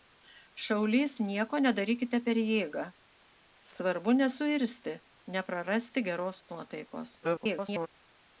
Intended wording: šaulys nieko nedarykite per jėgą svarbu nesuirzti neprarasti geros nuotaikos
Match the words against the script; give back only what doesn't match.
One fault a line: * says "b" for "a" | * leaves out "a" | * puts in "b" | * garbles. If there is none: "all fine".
* garbles